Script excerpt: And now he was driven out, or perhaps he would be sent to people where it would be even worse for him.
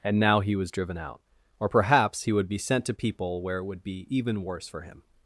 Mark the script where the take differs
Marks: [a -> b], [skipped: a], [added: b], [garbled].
And now he was driven out, or perhaps he would be sent to people where it would be even worse for him.